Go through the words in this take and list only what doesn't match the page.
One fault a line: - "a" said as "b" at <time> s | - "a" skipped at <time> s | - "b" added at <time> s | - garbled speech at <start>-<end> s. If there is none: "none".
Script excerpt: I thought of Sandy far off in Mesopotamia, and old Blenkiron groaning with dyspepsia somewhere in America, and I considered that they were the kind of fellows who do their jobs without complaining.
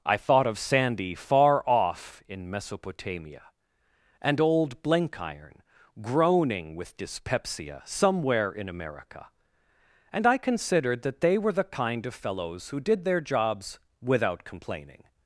- "do" said as "did" at 12.8 s